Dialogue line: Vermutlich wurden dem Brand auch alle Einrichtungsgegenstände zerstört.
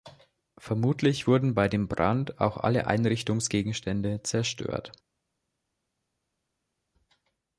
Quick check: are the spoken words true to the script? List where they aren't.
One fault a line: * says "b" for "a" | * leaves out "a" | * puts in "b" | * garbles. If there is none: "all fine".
* puts in "bei"